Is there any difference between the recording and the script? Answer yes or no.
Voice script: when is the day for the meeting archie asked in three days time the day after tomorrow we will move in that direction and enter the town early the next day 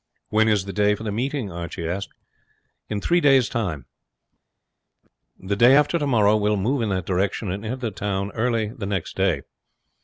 no